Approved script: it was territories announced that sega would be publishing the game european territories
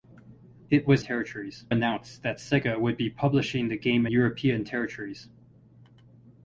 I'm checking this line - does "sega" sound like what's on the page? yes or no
yes